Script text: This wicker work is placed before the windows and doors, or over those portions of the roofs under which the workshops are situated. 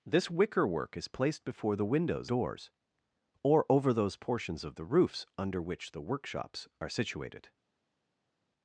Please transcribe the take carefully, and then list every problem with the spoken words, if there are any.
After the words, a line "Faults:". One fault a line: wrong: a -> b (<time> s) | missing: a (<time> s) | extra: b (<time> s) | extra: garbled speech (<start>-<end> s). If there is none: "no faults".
This wicker work is placed before the windows doors, or over those portions of the roofs under which the workshops are situated.
Faults:
missing: and (2.3 s)